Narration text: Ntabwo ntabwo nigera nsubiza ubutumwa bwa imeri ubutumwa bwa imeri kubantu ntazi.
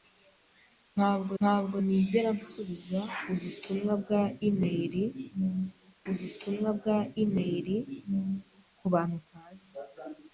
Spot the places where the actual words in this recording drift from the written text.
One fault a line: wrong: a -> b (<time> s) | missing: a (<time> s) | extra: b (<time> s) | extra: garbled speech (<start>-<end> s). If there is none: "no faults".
no faults